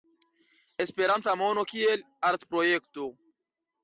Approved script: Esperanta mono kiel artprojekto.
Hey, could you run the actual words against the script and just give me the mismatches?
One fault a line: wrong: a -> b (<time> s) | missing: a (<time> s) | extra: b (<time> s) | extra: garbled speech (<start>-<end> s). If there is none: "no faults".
no faults